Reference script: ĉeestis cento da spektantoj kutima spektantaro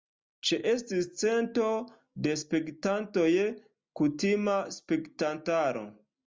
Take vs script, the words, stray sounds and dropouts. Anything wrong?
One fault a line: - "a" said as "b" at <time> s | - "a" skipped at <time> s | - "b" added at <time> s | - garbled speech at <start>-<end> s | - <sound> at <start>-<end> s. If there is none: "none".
none